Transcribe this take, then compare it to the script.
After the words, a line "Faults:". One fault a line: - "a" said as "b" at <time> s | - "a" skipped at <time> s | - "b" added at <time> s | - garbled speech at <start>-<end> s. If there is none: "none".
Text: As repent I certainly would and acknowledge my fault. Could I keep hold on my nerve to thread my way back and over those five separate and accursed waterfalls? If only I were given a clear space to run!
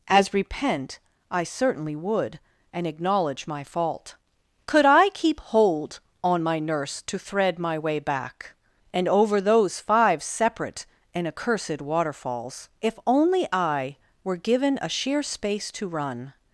As repent I certainly would and acknowledge my fault. Could I keep hold on my nurse to thread my way back and over those five separate and accursed waterfalls? If only I were given a sheer space to run!
Faults:
- "nerve" said as "nurse" at 6.6 s
- "clear" said as "sheer" at 14.9 s